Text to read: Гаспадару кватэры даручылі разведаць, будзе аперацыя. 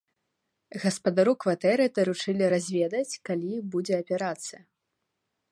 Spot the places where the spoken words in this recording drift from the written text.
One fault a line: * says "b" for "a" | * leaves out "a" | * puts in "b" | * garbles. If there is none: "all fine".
* puts in "калі"